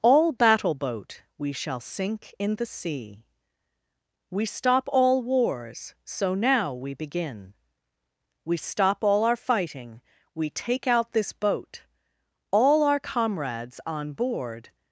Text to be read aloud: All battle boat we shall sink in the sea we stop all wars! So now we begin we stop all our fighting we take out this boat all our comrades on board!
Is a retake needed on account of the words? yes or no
no